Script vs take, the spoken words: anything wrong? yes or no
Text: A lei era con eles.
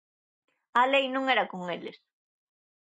yes